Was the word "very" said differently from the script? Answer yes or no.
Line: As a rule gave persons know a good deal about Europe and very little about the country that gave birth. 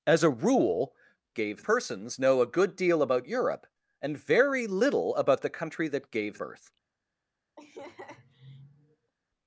no